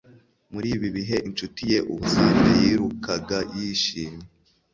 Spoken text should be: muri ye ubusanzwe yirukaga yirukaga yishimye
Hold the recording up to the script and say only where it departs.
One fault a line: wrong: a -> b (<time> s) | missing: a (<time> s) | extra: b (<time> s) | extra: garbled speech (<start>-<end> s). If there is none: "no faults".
extra: ibi bihe inshuti (0.8 s)
missing: yirukaga (3.4 s)